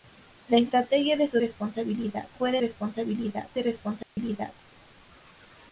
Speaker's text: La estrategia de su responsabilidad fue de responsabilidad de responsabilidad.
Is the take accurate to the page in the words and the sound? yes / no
no